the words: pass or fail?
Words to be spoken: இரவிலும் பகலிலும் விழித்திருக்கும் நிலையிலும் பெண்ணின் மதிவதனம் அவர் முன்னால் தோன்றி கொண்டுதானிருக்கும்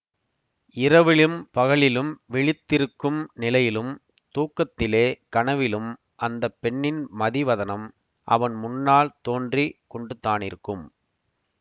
fail